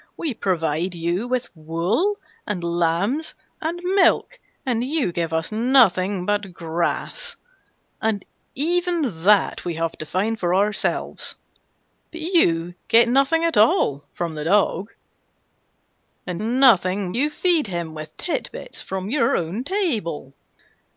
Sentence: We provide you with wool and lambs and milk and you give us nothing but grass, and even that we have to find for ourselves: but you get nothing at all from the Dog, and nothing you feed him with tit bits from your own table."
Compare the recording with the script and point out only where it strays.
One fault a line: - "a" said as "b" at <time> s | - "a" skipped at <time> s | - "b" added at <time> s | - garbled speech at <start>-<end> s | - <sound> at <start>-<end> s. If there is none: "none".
none